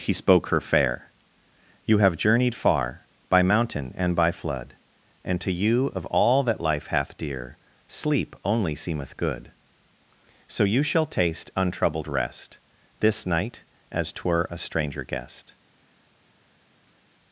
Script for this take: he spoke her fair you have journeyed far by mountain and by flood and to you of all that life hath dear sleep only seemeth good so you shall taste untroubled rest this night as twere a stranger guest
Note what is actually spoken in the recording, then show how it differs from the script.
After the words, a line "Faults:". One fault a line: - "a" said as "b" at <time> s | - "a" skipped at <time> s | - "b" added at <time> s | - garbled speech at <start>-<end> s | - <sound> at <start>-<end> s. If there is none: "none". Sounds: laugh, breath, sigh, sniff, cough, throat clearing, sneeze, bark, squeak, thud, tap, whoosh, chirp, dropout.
he spoke her fair you have journeyed far by mountain and by flood and to you of all that life hath dear sleep only seemeth good so you shall taste untroubled rest this night as twere a stranger guest
Faults:
none